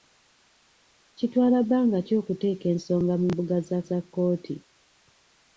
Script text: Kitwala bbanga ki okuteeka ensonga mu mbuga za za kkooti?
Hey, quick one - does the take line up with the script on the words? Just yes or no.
yes